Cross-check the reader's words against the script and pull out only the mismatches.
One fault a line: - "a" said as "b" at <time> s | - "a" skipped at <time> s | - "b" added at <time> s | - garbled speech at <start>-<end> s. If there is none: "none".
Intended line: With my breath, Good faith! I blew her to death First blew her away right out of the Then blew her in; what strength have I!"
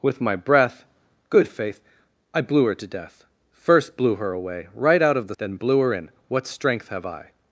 none